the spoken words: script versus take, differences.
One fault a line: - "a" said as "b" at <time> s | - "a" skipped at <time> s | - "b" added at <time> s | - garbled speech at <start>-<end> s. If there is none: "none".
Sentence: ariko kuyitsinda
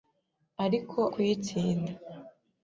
none